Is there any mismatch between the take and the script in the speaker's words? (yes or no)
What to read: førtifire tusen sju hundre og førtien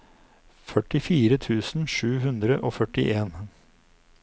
no